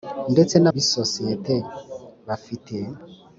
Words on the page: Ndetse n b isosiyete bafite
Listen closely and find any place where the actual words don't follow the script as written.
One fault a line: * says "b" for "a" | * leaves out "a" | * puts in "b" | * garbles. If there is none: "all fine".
all fine